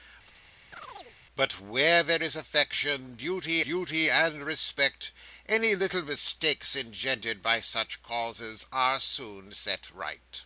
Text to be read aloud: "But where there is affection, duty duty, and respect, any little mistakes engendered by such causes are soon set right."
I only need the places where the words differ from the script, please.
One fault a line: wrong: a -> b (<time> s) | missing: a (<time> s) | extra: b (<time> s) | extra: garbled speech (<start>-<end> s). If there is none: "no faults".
no faults